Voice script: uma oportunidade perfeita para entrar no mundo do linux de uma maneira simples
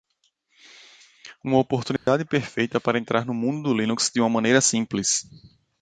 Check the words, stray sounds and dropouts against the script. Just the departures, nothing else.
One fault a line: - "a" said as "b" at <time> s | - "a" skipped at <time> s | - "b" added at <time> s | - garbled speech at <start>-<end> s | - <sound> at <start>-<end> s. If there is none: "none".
- dropout at 2.0-2.1 s